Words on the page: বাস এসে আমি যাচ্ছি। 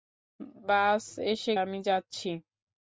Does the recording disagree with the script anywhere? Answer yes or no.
no